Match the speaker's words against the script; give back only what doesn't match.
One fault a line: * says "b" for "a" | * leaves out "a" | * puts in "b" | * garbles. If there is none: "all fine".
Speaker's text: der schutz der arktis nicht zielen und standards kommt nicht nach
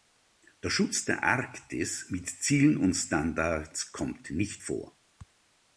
* says "mit" for "nicht"
* says "vor" for "nach"